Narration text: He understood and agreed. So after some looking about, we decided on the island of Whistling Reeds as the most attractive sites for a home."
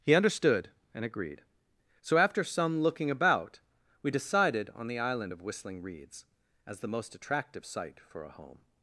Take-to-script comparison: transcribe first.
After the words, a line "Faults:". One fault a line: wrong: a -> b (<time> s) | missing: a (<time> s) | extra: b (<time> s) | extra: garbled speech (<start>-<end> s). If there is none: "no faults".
He understood and agreed. So after some looking about, we decided on the island of Whistling Reeds as the most attractive site for a home."
Faults:
wrong: sites -> site (7.6 s)